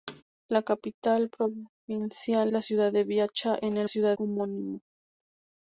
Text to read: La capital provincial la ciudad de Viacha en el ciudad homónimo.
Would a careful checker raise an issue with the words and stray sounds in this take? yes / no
yes